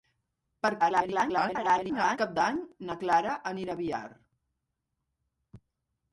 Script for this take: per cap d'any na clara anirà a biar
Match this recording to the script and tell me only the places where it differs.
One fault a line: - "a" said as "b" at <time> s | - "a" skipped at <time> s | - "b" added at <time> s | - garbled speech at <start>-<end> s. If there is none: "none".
- garbled speech at 0.8-2.2 s